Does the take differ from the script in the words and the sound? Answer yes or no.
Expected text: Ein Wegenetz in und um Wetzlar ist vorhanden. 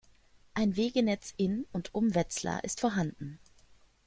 no